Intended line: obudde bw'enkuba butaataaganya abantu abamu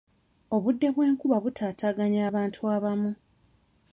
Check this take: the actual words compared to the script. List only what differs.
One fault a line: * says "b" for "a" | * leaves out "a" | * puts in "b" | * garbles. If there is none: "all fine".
all fine